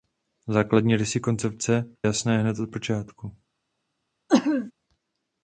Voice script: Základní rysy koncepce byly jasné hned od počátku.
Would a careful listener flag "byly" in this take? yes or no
yes